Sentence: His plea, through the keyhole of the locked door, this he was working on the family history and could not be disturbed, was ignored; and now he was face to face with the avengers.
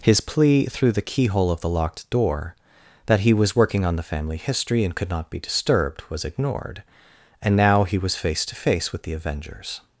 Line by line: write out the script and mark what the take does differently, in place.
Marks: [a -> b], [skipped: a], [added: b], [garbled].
His plea, through the keyhole of the locked door, [this -> that] he was working on the family history and could not be disturbed, was ignored; and now he was face to face with the avengers.